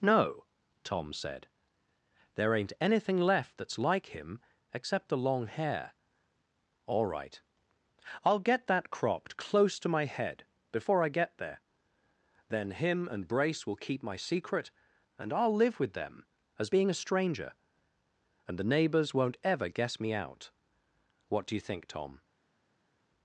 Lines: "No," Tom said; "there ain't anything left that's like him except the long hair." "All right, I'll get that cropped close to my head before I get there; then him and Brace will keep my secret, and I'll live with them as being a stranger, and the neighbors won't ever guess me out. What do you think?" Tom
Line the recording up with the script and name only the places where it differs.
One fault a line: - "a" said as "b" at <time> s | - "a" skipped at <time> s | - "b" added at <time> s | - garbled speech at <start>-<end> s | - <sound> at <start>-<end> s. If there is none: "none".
none